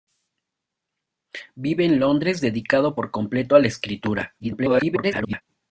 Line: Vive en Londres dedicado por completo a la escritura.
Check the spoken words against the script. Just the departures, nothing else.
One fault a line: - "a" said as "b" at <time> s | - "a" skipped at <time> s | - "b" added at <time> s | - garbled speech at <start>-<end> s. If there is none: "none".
- garbled speech at 4.4-5.4 s